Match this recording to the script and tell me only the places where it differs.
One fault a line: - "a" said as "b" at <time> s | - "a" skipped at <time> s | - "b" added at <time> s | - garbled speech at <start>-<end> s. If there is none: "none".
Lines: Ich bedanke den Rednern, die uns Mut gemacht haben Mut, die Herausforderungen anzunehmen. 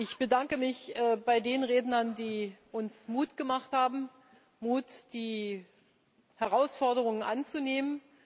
- "mich bei" added at 0.6 s